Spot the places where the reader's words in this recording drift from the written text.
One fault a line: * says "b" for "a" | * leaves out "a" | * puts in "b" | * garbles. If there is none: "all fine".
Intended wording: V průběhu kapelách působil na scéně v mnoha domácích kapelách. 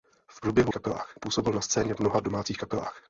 all fine